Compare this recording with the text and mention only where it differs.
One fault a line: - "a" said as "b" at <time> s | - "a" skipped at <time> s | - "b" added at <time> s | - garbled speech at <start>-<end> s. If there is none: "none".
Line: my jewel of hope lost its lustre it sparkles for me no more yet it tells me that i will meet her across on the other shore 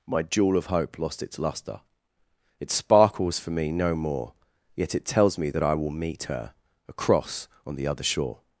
none